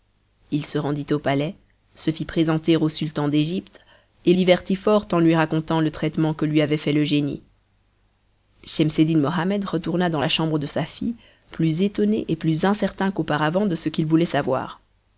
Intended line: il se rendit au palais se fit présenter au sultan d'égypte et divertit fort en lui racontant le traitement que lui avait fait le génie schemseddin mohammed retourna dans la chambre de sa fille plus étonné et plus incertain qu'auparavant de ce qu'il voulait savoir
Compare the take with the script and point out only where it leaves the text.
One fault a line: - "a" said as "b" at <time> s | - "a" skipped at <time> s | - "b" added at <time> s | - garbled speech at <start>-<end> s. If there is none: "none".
none